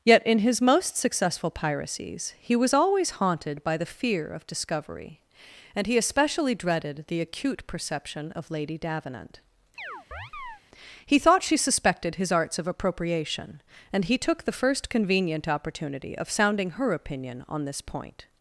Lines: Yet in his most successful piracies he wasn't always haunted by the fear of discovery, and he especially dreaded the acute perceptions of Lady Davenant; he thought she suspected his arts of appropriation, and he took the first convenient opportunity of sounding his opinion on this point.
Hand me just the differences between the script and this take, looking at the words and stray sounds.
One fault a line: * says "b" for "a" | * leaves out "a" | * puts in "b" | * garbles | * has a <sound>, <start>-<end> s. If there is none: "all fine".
* says "was" for "wasn't"
* says "perception" for "perceptions"
* has a chirp, 9.8-10.6 s
* says "her" for "his"